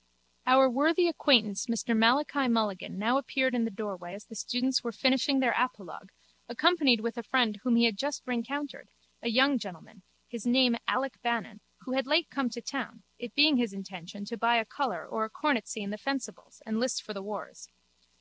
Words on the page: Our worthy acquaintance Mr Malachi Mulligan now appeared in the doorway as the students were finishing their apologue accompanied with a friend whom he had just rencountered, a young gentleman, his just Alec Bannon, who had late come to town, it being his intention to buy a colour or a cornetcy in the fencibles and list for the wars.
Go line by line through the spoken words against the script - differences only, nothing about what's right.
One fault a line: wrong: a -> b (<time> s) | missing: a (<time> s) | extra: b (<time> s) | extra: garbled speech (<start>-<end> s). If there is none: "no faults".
wrong: just -> name (10.5 s)